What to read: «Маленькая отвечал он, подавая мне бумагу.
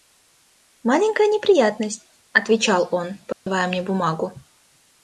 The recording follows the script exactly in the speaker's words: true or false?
false